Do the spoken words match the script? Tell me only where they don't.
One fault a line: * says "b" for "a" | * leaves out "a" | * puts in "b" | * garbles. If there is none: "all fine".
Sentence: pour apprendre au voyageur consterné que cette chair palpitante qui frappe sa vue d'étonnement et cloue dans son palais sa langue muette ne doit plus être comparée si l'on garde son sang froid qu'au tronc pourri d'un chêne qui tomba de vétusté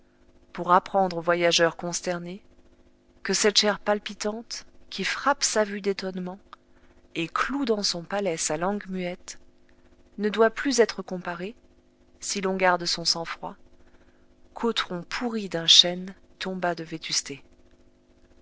* leaves out "qui"